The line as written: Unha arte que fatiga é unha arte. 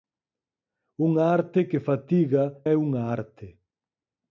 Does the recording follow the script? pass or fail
pass